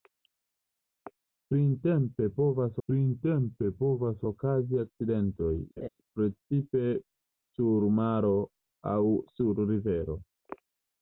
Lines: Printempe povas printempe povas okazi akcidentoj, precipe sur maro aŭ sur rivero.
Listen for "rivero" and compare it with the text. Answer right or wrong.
right